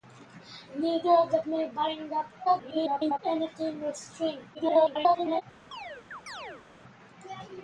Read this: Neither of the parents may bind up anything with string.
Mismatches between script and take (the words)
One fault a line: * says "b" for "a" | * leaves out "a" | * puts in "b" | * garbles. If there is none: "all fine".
* leaves out "parents"
* garbles
* garbles